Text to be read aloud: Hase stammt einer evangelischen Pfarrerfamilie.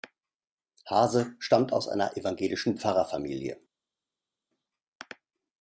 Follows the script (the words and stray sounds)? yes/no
no